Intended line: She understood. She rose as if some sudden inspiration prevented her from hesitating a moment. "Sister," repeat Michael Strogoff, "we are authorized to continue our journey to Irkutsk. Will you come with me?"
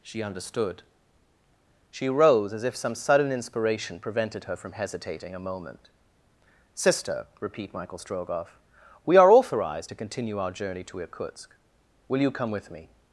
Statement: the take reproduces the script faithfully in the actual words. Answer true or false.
true